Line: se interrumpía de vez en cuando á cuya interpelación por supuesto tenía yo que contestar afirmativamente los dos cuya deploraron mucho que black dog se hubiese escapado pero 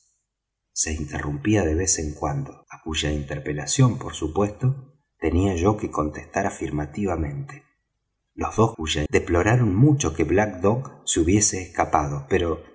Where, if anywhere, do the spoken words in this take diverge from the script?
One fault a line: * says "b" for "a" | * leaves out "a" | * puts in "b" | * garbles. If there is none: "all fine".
all fine